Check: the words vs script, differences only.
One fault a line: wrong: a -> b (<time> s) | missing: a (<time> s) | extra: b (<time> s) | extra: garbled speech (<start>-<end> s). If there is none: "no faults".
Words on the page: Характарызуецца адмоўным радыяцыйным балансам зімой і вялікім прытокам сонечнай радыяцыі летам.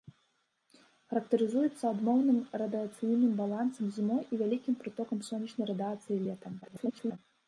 extra: garbled speech (6.6-7.2 s)